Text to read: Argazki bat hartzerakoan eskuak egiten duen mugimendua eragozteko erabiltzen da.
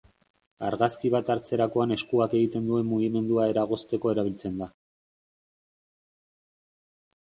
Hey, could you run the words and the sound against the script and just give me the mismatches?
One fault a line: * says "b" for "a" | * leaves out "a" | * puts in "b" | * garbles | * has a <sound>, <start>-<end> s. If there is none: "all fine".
all fine